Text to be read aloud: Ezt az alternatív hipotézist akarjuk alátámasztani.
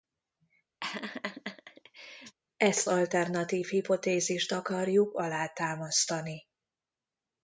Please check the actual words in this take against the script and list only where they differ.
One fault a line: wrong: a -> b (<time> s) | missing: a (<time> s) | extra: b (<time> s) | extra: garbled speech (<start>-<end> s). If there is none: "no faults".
missing: az (2.9 s)